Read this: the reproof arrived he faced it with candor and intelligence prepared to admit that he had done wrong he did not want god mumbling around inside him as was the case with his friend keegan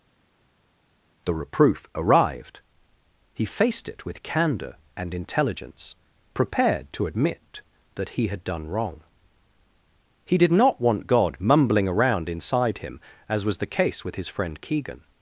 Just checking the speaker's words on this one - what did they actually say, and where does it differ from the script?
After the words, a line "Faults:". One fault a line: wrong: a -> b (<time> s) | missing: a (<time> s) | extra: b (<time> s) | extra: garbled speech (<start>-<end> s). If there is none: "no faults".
the reproof arrived he faced it with candor and intelligence prepared to admit that he had done wrong he did not want god mumbling around inside him as was the case with his friend keegan
Faults:
no faults